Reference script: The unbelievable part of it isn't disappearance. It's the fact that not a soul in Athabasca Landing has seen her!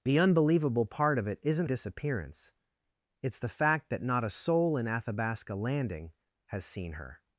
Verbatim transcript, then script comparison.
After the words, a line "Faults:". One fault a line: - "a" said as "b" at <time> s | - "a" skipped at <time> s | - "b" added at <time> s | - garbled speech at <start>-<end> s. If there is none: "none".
The unbelievable part of it isn't disappearance. It's the fact that not a soul in Athabasca Landing has seen her!
Faults:
none